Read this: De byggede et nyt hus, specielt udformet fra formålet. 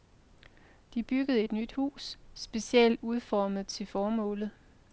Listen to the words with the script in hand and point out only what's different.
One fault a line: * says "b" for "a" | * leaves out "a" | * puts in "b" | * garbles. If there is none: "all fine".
* says "til" for "fra"